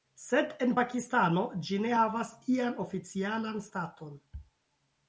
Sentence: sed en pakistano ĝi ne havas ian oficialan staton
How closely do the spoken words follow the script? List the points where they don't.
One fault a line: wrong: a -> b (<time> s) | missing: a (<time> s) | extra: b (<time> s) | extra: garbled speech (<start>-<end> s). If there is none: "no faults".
no faults